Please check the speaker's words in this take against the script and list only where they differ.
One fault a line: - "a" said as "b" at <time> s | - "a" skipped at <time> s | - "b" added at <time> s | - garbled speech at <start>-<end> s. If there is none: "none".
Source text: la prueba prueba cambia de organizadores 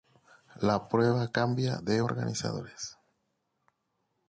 - "prueba" skipped at 1.3 s